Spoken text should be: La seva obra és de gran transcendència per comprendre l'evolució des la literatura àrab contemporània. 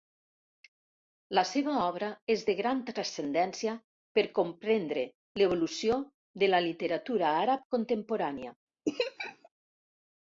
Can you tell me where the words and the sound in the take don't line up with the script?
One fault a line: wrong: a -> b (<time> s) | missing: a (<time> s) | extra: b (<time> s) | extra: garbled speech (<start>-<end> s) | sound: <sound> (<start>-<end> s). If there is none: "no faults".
wrong: des -> de (6.4 s)
sound: laugh (8.8-9.5 s)